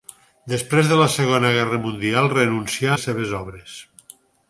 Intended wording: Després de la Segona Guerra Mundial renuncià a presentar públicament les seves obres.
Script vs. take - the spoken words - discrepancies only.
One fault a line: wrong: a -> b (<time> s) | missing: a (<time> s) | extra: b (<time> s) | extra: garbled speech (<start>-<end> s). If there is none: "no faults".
missing: a presentar públicament (3.0 s)